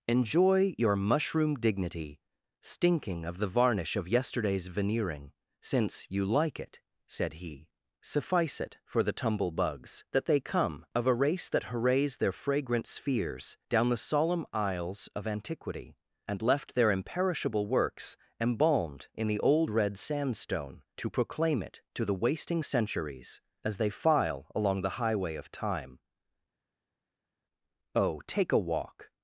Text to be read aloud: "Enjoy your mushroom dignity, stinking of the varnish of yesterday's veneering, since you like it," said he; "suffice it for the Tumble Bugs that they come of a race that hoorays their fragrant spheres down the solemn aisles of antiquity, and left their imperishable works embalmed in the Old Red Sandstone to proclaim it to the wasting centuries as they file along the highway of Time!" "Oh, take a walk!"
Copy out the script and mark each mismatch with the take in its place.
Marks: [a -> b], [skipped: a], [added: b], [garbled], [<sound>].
"Enjoy your mushroom dignity, stinking of the varnish of yesterday's veneering, since you like it," said he; "suffice it for the Tumble Bugs that they come of a race that hoorays their fragrant spheres down the solemn aisles of antiquity, and left their imperishable works embalmed in the Old Red Sandstone to proclaim it to the wasting centuries as they file along the highway of Time!" "Oh, take a walk!"